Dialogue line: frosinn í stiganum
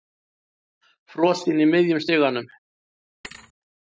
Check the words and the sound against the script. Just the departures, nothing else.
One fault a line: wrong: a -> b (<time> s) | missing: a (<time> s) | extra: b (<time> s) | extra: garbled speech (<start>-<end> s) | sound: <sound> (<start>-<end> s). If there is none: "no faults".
extra: miðjum (1.8 s)
sound: thud (3.2-3.5 s)